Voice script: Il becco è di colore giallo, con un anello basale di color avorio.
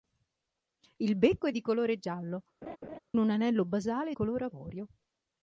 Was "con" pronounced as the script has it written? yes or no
no